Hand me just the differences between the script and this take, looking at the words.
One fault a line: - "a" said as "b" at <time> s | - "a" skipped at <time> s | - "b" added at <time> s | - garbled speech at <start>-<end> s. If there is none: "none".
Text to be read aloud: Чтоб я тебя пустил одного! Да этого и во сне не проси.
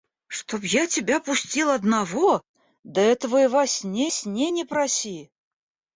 - "сне" added at 4.1 s